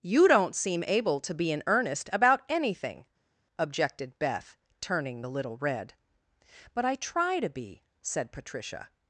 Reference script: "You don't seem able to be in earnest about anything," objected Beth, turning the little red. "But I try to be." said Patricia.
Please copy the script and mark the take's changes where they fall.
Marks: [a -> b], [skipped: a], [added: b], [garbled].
"You don't seem able to be in earnest about anything," objected Beth, turning the little red. "But I try to be." said Patricia.